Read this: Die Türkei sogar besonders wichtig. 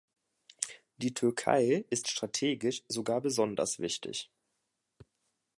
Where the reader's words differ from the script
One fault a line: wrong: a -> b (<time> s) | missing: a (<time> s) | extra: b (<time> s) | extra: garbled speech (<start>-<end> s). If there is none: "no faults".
extra: ist strategisch (1.9 s)